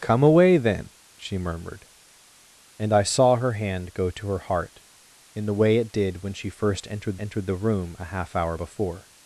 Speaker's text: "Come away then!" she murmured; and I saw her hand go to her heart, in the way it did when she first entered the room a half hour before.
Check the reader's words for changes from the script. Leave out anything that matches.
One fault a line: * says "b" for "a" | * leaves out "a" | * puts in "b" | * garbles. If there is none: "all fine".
* puts in "entered"